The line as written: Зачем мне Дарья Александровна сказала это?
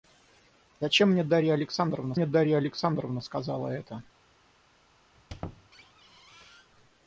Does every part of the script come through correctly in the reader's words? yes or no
no